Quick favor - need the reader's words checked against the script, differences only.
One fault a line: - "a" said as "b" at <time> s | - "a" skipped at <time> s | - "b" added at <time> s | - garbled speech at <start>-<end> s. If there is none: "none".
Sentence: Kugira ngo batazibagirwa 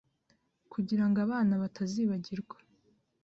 - "abana" added at 1.2 s